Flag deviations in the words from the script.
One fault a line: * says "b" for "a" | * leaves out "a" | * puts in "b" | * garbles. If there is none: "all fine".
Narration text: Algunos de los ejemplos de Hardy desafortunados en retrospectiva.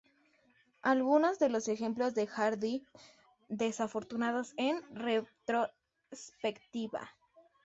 all fine